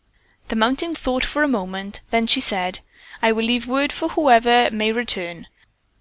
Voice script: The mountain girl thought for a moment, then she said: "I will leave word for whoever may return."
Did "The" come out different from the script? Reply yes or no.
no